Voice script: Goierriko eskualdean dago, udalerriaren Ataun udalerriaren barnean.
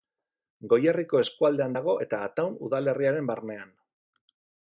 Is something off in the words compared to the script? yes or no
yes